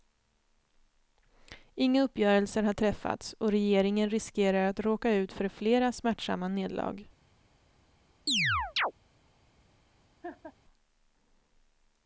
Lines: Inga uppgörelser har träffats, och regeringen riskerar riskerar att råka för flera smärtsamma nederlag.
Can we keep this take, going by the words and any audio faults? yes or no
no